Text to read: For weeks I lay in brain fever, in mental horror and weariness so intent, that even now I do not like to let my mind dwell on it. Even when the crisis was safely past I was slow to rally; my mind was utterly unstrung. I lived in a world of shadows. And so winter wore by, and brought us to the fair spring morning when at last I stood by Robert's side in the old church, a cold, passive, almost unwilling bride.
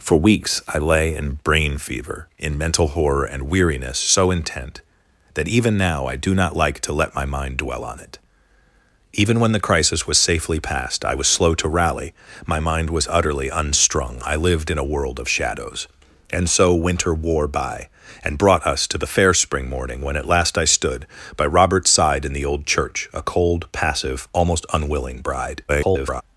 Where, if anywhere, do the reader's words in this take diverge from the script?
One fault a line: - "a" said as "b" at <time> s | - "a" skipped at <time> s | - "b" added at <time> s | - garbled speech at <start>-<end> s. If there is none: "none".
- garbled speech at 25.7-26.2 s